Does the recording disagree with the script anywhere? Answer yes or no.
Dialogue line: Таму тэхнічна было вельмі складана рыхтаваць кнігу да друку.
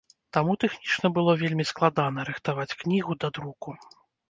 no